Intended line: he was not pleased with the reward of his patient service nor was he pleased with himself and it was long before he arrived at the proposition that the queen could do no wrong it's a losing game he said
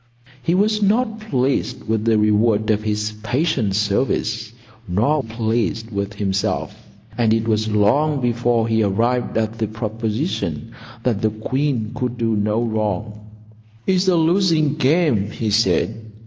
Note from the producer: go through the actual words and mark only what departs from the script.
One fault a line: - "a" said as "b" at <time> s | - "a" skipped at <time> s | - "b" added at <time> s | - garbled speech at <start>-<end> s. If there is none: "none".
- "was he" skipped at 5.2 s